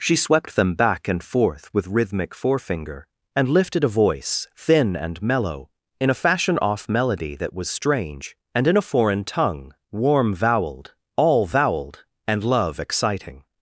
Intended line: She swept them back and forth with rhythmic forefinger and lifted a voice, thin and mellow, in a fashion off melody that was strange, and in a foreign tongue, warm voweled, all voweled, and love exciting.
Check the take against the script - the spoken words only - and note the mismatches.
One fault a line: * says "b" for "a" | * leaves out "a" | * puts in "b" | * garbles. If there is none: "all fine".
all fine